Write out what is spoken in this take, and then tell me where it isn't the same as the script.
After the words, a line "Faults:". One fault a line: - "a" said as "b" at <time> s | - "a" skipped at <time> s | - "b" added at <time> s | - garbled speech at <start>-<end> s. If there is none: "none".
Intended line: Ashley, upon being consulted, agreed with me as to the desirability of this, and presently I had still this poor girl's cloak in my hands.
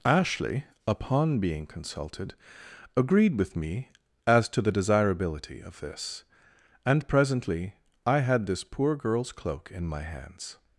Ashley, upon being consulted, agreed with me as to the desirability of this, and presently I had this poor girl's cloak in my hands.
Faults:
- "still" skipped at 8.5 s